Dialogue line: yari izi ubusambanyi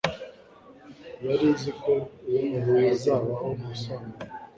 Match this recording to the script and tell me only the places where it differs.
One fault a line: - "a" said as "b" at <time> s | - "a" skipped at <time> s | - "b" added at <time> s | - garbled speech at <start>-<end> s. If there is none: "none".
- "ko hazabaho" added at 1.8 s